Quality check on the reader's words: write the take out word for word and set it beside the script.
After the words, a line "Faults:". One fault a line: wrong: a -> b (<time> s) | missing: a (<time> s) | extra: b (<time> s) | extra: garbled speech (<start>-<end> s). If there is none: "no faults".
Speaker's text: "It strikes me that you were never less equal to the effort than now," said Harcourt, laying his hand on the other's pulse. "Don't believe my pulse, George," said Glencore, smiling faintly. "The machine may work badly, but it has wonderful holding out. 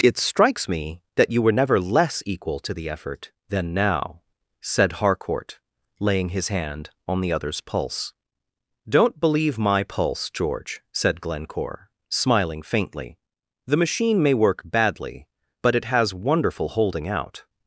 "It strikes me that you were never less equal to the effort than now," said Harcourt, laying his hand on the other's pulse. "Don't believe my pulse, George," said Glencore, smiling faintly. "The machine may work badly, but it has wonderful holding out.
Faults:
no faults